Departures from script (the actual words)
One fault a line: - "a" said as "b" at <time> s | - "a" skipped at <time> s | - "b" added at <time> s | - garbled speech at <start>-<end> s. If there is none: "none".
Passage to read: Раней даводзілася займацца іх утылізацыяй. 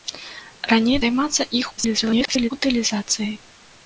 - "даводзілася" skipped at 0.9 s
- garbled speech at 1.8-2.5 s